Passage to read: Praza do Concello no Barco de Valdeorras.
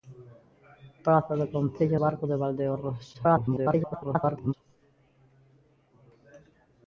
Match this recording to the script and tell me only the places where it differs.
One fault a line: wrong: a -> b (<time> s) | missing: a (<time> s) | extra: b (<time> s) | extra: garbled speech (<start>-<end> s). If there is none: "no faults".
missing: no (2.0 s)
extra: garbled speech (3.1-4.5 s)